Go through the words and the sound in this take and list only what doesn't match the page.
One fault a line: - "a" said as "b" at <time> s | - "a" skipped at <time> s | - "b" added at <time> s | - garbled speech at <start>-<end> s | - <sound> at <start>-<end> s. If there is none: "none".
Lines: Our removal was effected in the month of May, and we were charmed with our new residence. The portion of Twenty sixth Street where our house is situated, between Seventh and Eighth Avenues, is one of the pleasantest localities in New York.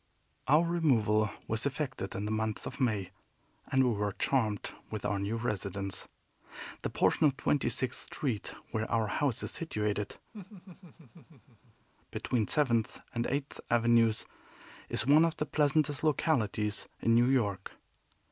- laugh at 10.3-11.9 s